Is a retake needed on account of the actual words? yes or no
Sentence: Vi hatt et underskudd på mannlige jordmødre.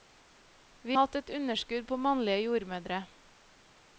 no